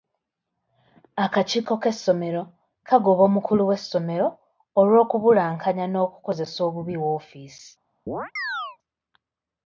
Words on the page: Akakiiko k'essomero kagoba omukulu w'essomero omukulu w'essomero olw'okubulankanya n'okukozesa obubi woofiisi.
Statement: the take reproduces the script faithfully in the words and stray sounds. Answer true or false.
false